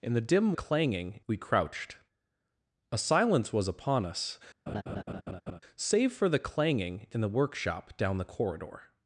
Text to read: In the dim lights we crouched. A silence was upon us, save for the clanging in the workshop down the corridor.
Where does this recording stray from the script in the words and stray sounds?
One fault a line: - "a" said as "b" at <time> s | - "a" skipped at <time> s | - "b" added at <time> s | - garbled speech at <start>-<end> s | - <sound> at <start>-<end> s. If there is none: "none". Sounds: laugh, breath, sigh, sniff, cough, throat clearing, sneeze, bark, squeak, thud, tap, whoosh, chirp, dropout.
- "lights" said as "clanging" at 0.5 s
- laugh at 4.7-5.6 s